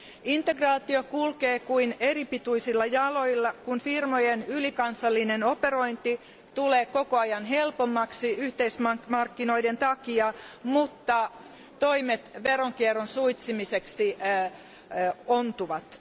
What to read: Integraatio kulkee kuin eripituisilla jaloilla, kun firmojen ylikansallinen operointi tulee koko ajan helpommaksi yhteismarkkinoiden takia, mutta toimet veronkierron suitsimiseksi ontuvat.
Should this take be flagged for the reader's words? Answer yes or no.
no